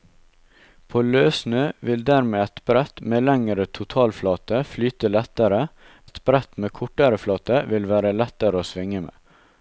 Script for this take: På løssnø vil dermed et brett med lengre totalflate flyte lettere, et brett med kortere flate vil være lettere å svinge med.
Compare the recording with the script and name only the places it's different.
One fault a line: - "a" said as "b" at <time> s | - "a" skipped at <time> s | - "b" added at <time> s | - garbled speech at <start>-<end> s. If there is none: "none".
none